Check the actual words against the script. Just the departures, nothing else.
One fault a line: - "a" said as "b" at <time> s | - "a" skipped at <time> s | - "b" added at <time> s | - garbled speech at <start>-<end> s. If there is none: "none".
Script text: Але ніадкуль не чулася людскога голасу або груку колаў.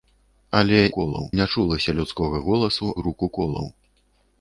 - "ніадкуль" said as "колаў" at 1.0 s
- "або" skipped at 2.9 s